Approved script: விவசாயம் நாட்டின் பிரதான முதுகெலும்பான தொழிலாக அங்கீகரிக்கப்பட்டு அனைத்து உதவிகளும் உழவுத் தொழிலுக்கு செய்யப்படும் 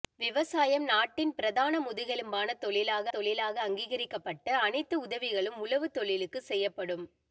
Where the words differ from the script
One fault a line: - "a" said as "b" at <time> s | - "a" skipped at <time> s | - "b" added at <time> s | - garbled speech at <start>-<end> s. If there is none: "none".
- "தொழிலாக" added at 3.1 s